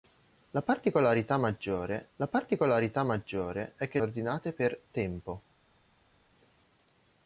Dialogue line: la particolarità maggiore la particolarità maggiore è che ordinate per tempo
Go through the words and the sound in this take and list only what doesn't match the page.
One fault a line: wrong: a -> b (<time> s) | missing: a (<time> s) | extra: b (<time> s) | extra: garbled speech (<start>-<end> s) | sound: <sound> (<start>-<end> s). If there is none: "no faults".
no faults